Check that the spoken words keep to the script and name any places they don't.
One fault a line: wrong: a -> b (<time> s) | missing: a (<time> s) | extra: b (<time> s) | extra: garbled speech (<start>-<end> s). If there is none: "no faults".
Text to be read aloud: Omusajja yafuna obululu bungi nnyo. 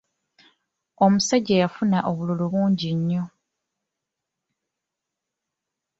no faults